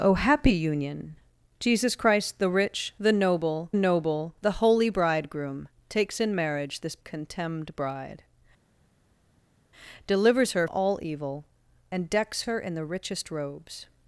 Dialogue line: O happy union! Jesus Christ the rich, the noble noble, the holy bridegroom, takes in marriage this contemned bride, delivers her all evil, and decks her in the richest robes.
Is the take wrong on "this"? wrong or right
right